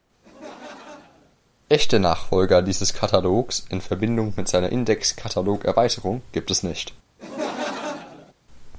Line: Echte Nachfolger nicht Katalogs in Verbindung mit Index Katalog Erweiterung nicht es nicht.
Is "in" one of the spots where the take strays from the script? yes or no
no